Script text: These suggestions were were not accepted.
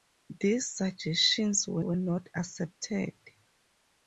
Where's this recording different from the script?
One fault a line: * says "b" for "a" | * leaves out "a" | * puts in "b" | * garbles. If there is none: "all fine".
all fine